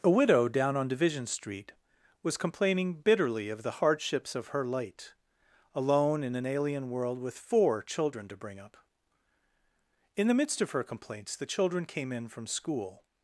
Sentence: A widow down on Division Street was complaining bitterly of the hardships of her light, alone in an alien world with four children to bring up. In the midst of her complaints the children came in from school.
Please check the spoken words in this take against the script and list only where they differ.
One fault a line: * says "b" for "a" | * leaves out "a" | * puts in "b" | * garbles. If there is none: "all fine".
all fine